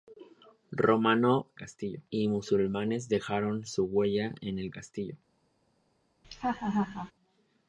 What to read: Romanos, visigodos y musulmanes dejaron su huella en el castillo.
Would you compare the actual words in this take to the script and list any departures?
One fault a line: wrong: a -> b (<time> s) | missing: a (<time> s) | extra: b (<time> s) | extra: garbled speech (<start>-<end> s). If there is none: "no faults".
wrong: visigodos -> castillo (1.6 s)